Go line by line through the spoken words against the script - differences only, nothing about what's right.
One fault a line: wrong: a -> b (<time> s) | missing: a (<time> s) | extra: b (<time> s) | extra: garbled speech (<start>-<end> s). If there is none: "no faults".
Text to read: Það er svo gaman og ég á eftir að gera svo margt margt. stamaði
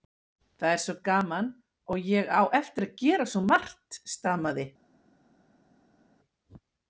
missing: margt (4.0 s)